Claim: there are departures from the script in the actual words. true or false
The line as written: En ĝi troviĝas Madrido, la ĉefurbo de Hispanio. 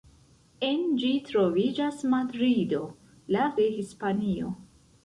true